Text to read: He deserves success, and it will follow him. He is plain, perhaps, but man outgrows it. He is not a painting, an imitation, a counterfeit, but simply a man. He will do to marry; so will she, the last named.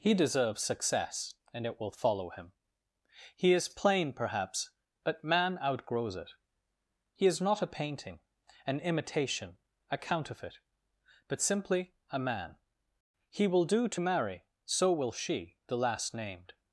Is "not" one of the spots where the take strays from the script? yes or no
no